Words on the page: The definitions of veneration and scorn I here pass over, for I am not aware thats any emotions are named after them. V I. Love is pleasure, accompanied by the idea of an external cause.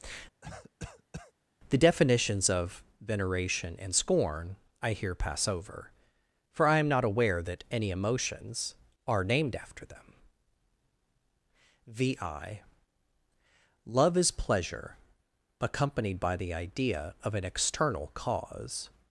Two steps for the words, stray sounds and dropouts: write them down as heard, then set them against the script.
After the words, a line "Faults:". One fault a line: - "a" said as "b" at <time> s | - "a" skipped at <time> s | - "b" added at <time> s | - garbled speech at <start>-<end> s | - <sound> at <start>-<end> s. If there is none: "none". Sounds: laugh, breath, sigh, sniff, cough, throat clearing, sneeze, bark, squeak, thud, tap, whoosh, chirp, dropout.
The definitions of veneration and scorn I here pass over, for I am not aware that any emotions are named after them. V I. Love is pleasure, accompanied by the idea of an external cause.
Faults:
- cough at 0.4-1.3 s
- "thats" said as "that" at 7.4 s